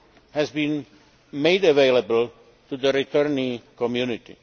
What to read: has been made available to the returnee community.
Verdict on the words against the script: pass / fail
pass